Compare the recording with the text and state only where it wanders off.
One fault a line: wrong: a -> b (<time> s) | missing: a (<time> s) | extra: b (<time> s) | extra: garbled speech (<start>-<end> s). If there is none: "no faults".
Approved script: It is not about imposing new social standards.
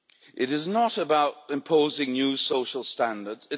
no faults